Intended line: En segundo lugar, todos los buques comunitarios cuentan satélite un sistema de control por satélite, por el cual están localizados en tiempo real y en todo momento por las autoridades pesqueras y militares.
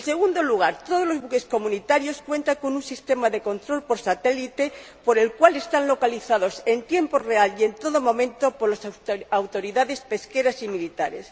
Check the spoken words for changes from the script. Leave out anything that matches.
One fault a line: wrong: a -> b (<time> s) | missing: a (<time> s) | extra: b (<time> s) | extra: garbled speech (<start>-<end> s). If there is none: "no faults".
wrong: satélite -> con (2.5 s)